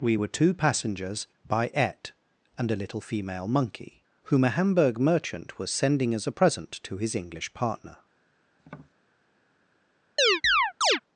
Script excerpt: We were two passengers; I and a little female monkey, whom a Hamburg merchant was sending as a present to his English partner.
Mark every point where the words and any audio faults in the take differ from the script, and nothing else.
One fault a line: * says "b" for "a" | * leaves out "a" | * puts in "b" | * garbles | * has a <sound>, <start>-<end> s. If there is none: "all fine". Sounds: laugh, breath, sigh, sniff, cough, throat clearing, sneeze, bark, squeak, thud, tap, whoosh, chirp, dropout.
* says "by et" for "I"
* has a tap, 8.6-8.9 s
* has a chirp, 10.2-11.0 s